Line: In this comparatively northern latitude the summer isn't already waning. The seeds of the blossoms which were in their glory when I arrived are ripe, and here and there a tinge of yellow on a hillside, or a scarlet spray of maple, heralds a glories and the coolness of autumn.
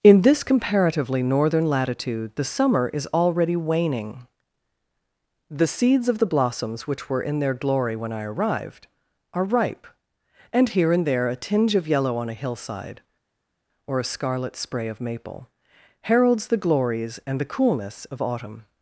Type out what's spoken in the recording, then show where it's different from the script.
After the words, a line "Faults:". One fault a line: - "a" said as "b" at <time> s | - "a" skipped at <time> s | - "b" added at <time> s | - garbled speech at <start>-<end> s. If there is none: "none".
In this comparatively northern latitude the summer is already waning. The seeds of the blossoms which were in their glory when I arrived are ripe, and here and there a tinge of yellow on a hillside, or a scarlet spray of maple, heralds the glories and the coolness of autumn.
Faults:
- "isn't" said as "is" at 2.9 s
- "a" said as "the" at 16.5 s